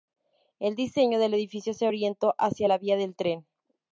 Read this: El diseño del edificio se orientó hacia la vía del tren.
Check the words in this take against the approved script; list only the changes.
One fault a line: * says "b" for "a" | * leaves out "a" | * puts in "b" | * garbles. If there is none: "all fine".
all fine